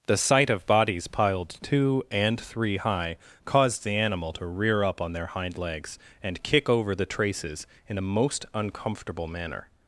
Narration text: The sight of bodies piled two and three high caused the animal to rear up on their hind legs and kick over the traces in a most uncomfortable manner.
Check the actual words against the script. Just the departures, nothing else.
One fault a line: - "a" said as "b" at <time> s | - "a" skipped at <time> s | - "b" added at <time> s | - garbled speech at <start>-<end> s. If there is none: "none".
none